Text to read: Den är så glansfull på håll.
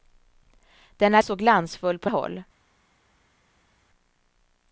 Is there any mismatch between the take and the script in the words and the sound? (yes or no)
no